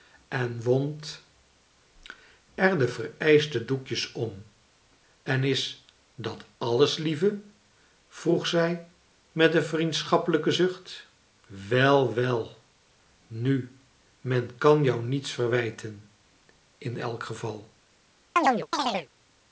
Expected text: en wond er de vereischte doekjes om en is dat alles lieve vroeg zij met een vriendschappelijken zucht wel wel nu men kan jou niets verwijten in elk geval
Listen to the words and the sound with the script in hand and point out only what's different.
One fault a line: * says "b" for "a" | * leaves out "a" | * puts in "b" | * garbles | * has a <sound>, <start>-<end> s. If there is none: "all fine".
* has a chirp, 18.4-19.1 s